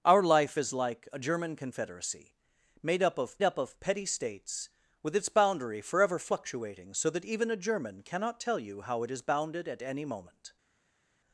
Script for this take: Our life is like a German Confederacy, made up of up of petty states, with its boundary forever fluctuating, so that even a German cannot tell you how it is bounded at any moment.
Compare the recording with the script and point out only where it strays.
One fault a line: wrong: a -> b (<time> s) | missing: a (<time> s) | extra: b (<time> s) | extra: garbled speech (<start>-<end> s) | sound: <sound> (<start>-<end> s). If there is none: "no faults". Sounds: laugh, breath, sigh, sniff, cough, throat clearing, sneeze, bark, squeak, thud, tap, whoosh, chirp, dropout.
no faults